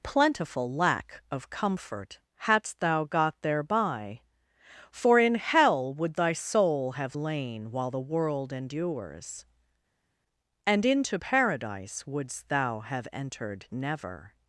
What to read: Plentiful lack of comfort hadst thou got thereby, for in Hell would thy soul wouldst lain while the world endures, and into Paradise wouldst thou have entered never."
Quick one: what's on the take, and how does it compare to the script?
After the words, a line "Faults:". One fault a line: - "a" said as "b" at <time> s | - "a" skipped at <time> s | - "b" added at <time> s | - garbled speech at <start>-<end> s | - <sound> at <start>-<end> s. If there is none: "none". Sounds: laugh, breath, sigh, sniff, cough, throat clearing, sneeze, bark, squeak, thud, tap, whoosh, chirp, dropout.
Plentiful lack of comfort hadst thou got thereby, for in Hell would thy soul have lain while the world endures, and into Paradise wouldst thou have entered never."
Faults:
- "wouldst" said as "have" at 6.9 s